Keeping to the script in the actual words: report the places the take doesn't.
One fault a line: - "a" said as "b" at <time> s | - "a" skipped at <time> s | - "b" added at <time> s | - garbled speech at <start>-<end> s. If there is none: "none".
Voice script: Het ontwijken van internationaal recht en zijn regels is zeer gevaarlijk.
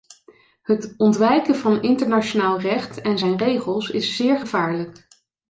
none